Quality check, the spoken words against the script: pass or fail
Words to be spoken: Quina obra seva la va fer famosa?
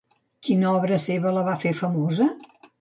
pass